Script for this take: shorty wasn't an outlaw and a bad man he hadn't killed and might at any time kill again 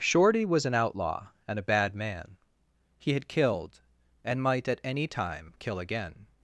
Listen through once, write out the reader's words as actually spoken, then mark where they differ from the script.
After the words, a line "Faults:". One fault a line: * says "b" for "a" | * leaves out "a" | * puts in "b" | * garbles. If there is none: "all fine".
shorty was an outlaw and a bad man he had killed and might at any time kill again
Faults:
* says "was" for "wasn't"
* says "had" for "hadn't"